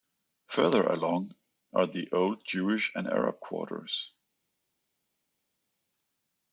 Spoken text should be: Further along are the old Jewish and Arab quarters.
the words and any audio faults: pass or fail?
pass